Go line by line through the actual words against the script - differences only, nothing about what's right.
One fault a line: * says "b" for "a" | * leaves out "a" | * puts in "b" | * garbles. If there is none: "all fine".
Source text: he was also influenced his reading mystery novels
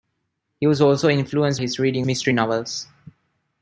all fine